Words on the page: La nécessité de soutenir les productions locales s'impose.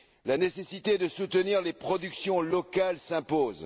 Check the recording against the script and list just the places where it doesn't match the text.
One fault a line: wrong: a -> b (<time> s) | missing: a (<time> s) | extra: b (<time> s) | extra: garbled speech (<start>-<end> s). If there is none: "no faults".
no faults